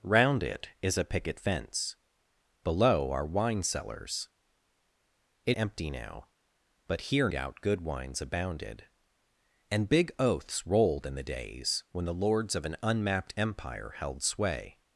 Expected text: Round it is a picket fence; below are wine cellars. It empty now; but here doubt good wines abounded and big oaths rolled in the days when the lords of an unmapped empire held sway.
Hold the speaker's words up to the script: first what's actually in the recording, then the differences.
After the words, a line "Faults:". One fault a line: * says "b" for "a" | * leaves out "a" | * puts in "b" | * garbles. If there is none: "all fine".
Round it is a picket fence; below are wine cellars. It empty now; but here doubt good wines abounded and big oaths rolled in the days when the lords of an unmapped empire held sway.
Faults:
all fine